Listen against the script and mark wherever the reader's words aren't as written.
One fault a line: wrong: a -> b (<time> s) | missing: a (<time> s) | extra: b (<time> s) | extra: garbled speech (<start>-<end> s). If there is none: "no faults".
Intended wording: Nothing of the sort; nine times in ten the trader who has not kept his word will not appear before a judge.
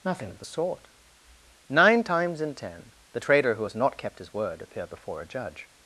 missing: will not (4.6 s)